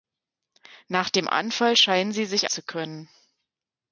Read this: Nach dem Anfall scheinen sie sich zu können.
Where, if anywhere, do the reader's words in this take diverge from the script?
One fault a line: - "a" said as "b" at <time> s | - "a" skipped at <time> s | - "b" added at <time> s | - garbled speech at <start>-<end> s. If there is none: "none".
none